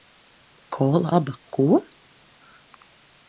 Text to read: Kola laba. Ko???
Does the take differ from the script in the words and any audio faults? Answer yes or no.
no